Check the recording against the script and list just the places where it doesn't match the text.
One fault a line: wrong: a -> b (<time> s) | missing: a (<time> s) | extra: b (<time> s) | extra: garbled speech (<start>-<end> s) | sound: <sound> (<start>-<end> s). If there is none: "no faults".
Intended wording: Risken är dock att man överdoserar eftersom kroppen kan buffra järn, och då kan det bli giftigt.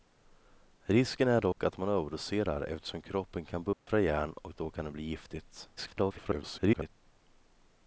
sound: dropout (1.5-1.6 s)
sound: dropout (3.7-3.9 s)
extra: garbled speech (5.8-6.9 s)